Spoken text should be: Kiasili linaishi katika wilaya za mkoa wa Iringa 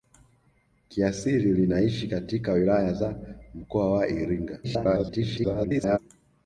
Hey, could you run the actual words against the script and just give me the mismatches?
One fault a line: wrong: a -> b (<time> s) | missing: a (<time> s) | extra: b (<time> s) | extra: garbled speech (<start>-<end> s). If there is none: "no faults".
extra: garbled speech (4.6-6.0 s)